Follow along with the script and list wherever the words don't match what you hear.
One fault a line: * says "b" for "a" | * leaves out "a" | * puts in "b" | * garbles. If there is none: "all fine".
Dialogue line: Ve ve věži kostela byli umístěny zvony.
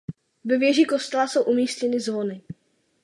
* leaves out "ve"
* says "jsou" for "byli"